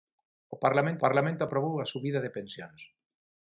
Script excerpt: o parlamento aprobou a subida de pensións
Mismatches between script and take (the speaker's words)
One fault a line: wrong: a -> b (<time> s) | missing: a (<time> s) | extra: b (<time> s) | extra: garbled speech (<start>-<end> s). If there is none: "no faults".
extra: parlamento (1.0 s)